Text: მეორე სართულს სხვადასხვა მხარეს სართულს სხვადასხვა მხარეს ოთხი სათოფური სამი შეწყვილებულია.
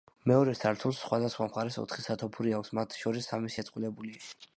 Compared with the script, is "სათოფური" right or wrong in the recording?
wrong